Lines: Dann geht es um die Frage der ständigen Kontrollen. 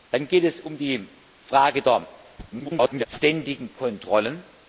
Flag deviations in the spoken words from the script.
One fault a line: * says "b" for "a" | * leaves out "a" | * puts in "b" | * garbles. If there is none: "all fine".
* garbles